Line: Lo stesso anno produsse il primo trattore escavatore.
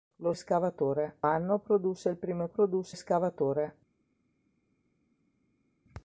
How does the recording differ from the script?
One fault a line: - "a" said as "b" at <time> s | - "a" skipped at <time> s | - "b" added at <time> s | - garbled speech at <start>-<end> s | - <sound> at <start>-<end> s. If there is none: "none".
- "stesso" said as "escavatore" at 0.3 s
- "trattore" said as "produsse" at 2.5 s